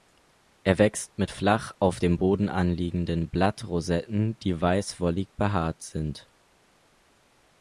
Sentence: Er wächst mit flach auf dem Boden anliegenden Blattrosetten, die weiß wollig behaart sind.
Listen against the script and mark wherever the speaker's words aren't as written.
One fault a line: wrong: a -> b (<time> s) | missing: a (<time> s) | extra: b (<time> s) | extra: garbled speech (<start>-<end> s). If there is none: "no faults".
no faults